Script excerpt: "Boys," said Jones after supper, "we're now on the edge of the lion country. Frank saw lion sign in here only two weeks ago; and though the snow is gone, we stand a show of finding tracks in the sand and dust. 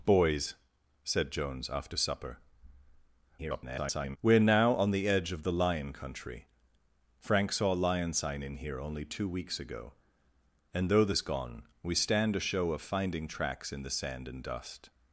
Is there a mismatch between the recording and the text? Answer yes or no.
yes